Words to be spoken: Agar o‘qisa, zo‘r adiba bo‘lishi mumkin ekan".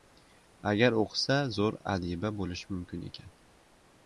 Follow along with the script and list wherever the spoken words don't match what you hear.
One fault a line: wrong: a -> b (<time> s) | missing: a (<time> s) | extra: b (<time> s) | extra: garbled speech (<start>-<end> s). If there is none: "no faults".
no faults